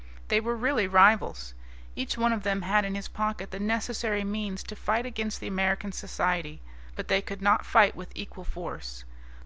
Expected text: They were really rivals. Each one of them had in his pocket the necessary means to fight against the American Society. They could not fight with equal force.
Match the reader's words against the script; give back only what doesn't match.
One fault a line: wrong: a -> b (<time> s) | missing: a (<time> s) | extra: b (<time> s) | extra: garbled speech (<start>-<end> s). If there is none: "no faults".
extra: But (7.0 s)